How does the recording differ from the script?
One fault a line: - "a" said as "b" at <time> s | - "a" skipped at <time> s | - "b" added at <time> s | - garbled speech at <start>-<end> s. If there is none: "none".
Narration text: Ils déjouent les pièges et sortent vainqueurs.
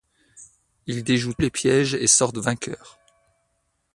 none